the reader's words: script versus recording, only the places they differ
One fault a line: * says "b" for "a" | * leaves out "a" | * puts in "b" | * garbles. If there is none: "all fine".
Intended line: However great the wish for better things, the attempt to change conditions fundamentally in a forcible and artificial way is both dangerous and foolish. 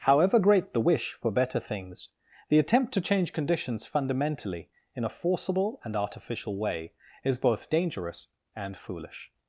all fine